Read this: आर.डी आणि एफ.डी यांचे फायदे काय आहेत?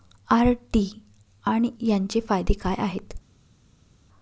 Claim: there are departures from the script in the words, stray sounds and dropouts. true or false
true